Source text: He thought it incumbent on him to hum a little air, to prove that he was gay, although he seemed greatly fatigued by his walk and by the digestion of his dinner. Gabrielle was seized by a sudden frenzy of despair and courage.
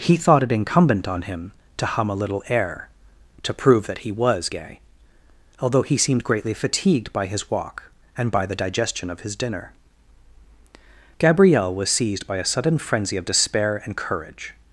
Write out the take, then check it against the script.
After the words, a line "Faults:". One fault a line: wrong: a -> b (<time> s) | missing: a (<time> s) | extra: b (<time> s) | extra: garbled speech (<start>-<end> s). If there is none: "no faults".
He thought it incumbent on him to hum a little air, to prove that he was gay, although he seemed greatly fatigued by his walk and by the digestion of his dinner. Gabrielle was seized by a sudden frenzy of despair and courage.
Faults:
no faults